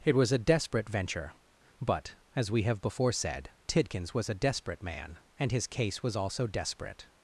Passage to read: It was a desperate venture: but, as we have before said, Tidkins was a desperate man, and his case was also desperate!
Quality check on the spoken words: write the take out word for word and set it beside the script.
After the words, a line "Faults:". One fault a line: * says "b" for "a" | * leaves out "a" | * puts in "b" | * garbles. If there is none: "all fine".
It was a desperate venture: but, as we have before said, Tidkins was a desperate man, and his case was also desperate!
Faults:
all fine